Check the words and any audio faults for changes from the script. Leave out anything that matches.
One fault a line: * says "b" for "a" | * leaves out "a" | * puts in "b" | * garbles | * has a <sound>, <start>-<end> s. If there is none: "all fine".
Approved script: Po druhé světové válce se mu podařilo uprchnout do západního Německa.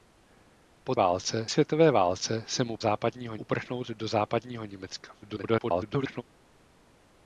* says "válce" for "druhé"
* says "západního" for "podařilo"
* garbles